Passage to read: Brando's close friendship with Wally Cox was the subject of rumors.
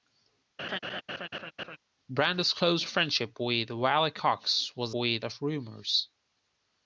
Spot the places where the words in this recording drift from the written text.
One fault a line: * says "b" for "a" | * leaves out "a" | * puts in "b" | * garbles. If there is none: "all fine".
* says "with" for "subject"